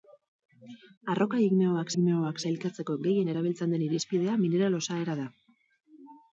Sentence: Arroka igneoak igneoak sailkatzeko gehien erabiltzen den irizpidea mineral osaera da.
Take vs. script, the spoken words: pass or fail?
pass